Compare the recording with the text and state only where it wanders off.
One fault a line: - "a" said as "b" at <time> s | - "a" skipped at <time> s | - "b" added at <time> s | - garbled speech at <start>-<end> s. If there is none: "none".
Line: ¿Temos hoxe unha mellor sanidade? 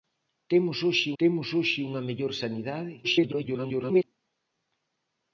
- "temos hoxe" added at 1.2 s
- garbled speech at 3.0-4.0 s